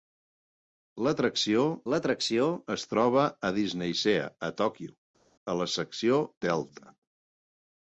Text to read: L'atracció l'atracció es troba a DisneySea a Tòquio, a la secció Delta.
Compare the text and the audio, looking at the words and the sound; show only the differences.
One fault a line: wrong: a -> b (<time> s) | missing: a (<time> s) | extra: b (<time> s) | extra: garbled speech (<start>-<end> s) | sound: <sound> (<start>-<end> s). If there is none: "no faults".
no faults